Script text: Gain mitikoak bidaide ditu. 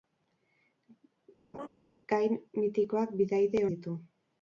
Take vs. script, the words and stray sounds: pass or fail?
fail